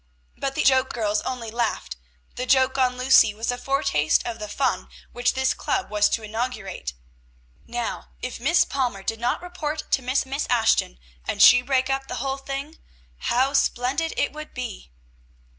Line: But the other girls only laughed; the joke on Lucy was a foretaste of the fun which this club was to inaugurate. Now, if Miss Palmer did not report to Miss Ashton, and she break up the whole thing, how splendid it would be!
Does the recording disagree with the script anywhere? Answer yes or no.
yes